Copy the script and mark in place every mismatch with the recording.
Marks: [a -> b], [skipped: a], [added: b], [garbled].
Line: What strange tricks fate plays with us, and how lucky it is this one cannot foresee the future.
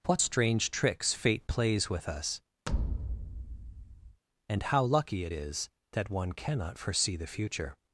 What strange tricks fate plays with us, and how lucky it is [this -> that] one cannot foresee the future.